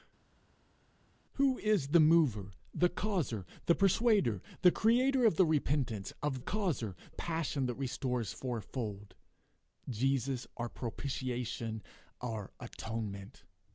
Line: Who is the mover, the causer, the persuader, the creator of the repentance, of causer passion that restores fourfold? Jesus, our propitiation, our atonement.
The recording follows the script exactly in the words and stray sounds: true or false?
true